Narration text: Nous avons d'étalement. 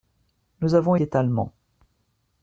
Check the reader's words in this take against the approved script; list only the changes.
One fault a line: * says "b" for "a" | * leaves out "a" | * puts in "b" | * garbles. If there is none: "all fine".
all fine